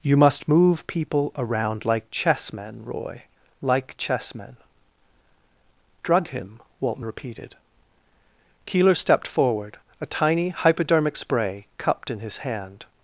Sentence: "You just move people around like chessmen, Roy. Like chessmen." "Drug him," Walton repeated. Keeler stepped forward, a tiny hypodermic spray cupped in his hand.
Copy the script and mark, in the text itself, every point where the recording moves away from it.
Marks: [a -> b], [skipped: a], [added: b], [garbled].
"You [just -> must] move people around like chessmen, Roy. Like chessmen." "Drug him," Walton repeated. Keeler stepped forward, a tiny hypodermic spray cupped in his hand.